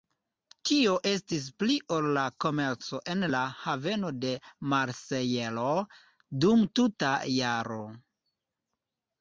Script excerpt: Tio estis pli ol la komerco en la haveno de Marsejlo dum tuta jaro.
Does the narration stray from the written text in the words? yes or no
no